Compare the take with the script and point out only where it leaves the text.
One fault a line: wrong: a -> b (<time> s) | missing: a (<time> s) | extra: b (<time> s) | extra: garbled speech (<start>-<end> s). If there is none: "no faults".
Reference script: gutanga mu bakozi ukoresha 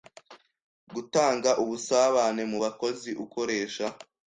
extra: ubusabane (1.6 s)